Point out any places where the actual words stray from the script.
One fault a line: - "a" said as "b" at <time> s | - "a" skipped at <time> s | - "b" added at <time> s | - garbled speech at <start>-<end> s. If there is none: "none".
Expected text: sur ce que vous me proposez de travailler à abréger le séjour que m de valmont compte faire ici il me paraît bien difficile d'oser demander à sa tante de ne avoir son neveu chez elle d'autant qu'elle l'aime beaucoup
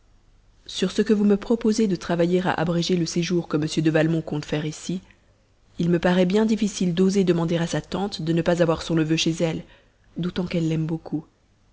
- "pas" added at 8.4 s